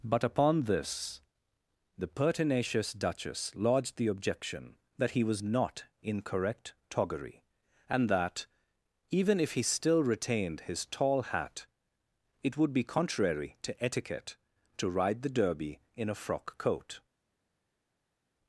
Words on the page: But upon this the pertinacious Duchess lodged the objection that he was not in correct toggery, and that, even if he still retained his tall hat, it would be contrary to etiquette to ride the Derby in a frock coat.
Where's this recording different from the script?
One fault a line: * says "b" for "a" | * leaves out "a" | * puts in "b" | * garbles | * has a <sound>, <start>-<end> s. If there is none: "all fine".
all fine